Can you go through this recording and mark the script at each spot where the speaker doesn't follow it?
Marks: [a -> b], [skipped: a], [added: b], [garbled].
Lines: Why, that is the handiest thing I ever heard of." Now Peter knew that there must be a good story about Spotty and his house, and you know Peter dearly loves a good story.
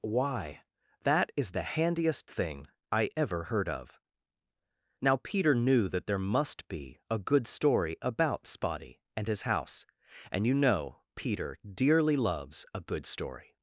Why, that is the handiest thing I ever heard of." Now Peter knew that there must be a good story about Spotty and his house, and you know Peter dearly loves a good story.